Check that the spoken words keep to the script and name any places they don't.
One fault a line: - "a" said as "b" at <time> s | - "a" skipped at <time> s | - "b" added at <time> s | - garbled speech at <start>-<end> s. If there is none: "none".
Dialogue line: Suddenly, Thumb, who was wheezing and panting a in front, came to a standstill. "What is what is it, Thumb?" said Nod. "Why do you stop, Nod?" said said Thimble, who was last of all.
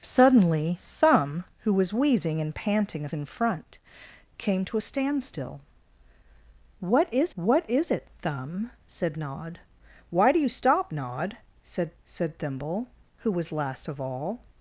none